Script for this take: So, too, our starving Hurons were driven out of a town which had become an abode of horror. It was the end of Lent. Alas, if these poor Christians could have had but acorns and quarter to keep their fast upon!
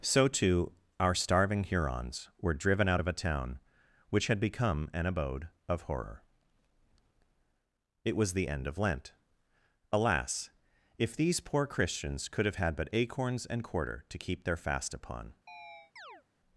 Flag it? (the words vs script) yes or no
no